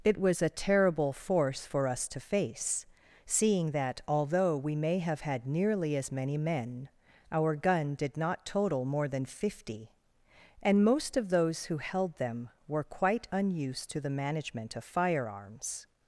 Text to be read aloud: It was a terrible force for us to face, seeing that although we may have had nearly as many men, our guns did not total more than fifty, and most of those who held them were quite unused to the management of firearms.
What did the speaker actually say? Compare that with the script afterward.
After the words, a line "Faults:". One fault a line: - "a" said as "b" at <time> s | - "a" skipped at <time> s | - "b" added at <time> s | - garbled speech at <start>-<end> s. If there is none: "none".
It was a terrible force for us to face, seeing that although we may have had nearly as many men, our gun did not total more than fifty, and most of those who held them were quite unused to the management of firearms.
Faults:
- "guns" said as "gun" at 7.6 s